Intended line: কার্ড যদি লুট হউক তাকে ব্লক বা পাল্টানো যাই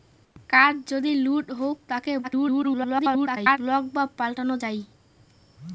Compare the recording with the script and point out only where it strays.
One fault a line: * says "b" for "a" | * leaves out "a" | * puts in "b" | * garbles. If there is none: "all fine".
* garbles